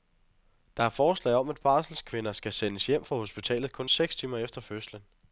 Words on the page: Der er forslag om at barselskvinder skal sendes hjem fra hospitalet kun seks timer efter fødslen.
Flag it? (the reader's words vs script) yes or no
no